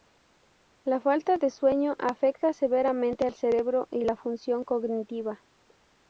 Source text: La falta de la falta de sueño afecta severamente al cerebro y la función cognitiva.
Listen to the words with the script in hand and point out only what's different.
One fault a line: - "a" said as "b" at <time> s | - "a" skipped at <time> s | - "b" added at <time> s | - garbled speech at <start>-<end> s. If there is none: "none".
- "la falta de" skipped at 1.5 s